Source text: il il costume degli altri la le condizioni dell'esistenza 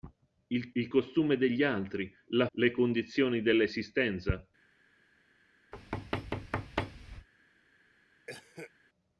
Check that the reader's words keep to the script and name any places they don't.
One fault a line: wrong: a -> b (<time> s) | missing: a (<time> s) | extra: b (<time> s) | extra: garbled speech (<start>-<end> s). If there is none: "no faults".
no faults